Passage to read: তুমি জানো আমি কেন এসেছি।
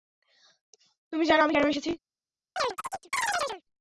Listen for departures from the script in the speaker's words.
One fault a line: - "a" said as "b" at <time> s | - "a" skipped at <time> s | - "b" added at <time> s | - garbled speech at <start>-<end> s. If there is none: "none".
none